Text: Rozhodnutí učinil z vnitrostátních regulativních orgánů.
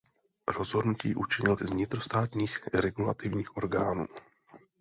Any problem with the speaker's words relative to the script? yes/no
no